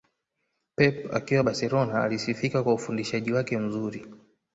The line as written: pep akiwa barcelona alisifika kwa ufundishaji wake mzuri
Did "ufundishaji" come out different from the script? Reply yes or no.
no